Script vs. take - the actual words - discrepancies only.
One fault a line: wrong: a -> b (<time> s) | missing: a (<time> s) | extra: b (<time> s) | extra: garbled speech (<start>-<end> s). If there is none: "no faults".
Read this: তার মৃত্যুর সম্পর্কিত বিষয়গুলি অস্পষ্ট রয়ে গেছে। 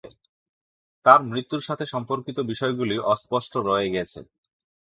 extra: সাথে (1.6 s)